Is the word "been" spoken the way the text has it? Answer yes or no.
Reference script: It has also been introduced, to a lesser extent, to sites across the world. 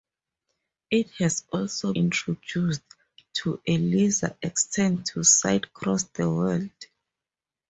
no